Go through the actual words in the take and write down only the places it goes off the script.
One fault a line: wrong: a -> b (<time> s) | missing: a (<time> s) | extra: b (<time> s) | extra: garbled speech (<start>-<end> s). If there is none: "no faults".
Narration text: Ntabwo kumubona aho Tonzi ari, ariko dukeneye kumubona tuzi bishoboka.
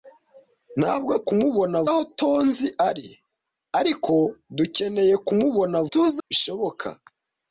no faults